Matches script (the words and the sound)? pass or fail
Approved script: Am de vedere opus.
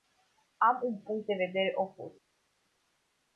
fail